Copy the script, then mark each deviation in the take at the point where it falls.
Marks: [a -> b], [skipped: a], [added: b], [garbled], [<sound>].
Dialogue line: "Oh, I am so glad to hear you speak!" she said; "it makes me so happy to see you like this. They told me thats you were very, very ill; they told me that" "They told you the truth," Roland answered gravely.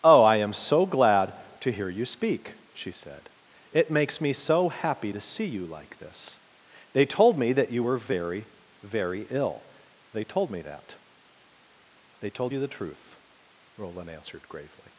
"Oh, I am so glad to hear you speak!" she said; "it makes me so happy to see you like this. They told me [thats -> that] you were very, very ill; they told me that" "They told you the truth," Roland answered gravely.